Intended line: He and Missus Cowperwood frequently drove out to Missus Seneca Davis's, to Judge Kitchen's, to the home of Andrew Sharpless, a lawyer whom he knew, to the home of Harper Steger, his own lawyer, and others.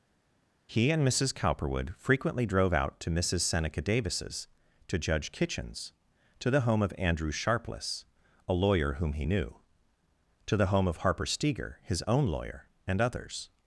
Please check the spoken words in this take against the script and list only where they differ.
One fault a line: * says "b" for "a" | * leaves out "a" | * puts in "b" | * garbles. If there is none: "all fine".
all fine